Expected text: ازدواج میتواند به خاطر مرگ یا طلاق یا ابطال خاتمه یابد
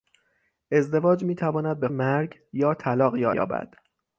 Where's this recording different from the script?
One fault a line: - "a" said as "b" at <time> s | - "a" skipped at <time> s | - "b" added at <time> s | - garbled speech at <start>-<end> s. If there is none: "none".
- "خاطر" skipped at 1.9 s
- "ابطال خاتمه" skipped at 3.3 s